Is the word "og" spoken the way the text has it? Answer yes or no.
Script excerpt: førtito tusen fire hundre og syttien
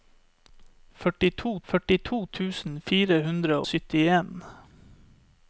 no